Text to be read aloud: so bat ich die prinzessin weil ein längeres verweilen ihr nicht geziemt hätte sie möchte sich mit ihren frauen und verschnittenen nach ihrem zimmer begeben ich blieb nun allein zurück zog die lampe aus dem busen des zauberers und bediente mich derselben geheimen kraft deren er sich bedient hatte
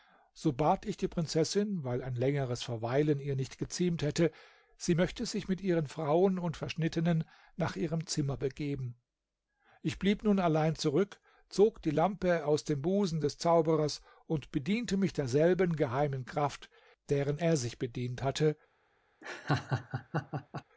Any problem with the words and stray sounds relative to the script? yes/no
yes